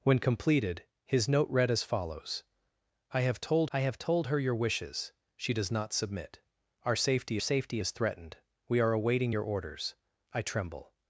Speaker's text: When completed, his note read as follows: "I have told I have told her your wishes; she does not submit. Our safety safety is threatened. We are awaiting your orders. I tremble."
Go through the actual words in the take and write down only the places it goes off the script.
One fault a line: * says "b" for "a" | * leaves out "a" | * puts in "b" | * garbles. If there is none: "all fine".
all fine